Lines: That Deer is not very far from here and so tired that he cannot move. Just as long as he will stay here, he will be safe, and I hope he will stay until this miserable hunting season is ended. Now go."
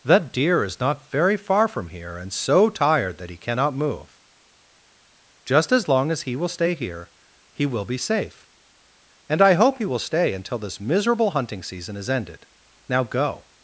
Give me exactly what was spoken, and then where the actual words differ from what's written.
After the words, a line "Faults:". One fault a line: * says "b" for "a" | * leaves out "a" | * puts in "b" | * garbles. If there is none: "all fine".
That Deer is not very far from here and so tired that he cannot move. Just as long as he will stay here, he will be safe, and I hope he will stay until this miserable hunting season is ended. Now go."
Faults:
all fine